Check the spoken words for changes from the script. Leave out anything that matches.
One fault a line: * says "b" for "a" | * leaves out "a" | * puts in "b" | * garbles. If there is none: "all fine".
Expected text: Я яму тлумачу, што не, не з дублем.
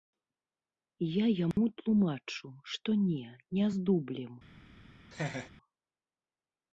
all fine